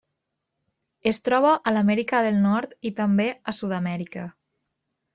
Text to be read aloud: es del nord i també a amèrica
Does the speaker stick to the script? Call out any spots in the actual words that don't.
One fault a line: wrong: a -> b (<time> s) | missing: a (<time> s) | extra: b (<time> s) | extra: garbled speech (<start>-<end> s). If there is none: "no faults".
extra: troba a l'amèrica (1.3 s)
extra: sud (3.6 s)